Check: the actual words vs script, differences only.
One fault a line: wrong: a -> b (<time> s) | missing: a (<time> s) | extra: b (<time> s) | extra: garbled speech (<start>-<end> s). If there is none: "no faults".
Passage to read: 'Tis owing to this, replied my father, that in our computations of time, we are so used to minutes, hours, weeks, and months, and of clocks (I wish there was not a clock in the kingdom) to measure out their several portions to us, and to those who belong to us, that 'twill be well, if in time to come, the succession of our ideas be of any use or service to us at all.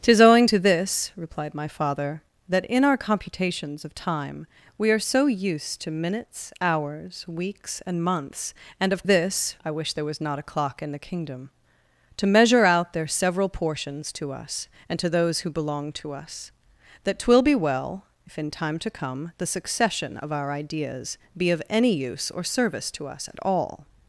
wrong: clocks -> this (9.0 s)